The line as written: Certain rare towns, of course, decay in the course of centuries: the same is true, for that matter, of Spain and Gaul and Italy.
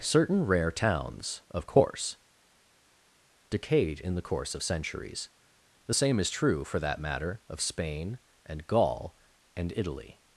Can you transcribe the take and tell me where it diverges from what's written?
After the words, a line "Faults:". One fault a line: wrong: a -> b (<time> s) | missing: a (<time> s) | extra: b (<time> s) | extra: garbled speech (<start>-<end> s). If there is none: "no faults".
Certain rare towns, of course, decayed in the course of centuries: the same is true, for that matter, of Spain and Gaul and Italy.
Faults:
wrong: decay -> decayed (3.5 s)